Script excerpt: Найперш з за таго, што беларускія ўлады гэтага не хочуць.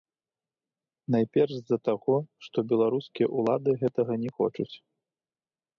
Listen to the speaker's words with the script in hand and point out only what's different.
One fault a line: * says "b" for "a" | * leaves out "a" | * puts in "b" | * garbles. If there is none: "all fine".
all fine